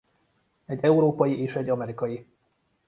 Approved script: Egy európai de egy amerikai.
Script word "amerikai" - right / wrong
right